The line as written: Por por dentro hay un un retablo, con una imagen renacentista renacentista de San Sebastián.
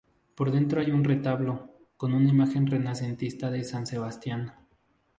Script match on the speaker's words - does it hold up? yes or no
no